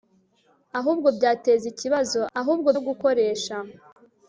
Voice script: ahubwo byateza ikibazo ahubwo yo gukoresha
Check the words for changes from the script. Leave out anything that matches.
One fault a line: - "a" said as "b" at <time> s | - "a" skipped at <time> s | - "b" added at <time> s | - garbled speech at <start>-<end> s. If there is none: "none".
none